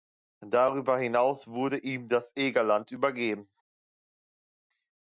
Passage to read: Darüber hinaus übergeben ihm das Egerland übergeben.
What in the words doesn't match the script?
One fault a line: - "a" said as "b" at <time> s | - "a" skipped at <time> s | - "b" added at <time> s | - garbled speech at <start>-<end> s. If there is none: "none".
- "übergeben" said as "wurde" at 1.5 s